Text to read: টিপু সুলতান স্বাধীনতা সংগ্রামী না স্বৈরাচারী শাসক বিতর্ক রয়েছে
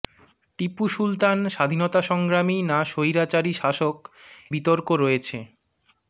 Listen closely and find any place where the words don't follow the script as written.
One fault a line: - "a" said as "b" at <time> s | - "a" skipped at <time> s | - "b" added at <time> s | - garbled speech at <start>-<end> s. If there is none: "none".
none